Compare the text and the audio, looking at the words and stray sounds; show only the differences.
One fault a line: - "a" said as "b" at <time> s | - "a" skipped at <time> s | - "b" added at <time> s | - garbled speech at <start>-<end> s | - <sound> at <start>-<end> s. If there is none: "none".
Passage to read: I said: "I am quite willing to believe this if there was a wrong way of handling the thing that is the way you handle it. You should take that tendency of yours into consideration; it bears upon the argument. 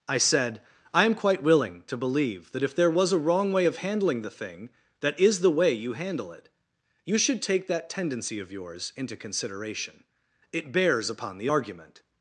- "this" said as "that" at 2.5 s